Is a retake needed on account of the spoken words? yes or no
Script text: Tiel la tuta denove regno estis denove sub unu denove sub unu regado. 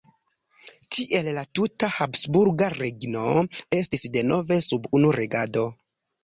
yes